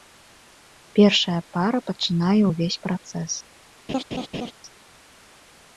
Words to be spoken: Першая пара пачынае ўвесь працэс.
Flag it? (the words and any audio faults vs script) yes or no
yes